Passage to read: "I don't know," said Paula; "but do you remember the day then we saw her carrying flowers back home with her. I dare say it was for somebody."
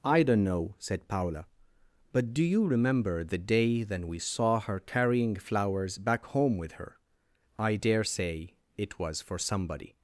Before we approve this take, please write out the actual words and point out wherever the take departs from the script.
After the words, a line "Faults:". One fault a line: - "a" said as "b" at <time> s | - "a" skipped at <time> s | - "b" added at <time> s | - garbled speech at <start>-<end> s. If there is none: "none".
"I don't know," said Paula; "but do you remember the day then we saw her carrying flowers back home with her. I dare say it was for somebody."
Faults:
none